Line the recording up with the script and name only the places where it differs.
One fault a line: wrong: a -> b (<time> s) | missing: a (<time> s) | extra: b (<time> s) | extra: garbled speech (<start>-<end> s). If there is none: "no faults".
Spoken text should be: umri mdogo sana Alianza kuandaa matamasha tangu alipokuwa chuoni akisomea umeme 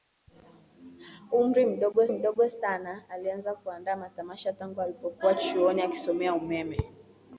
extra: mdogo (2.1 s)